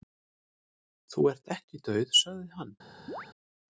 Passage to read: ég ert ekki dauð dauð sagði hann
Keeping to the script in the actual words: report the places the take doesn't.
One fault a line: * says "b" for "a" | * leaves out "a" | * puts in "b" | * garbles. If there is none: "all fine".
* says "þú" for "ég"
* leaves out "dauð"